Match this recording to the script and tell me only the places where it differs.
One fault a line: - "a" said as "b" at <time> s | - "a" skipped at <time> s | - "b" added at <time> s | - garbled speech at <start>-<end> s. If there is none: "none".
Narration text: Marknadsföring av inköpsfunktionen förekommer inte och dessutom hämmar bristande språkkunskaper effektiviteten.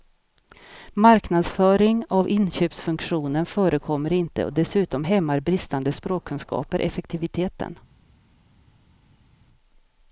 none